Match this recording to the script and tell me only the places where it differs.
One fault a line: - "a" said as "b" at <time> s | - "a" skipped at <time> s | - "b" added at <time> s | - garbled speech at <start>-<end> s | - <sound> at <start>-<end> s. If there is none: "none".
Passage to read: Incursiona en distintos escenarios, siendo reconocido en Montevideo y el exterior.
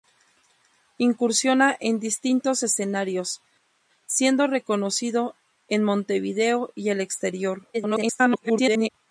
- garbled speech at 7.7-8.9 s